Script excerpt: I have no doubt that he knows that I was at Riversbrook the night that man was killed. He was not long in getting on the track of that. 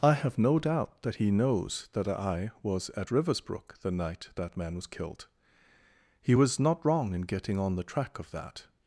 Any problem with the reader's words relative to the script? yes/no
yes